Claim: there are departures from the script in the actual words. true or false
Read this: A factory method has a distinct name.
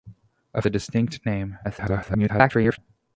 true